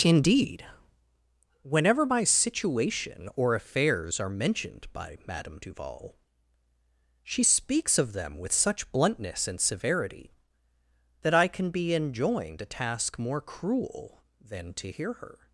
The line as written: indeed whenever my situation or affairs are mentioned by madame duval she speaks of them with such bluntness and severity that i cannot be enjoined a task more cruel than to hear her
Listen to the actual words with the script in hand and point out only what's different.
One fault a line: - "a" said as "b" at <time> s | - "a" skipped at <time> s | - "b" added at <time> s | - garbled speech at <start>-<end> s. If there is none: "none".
- "cannot" said as "can" at 11.5 s